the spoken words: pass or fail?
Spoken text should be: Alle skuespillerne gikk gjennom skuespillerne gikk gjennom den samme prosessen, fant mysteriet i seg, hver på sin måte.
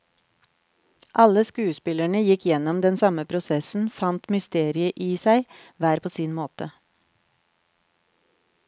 fail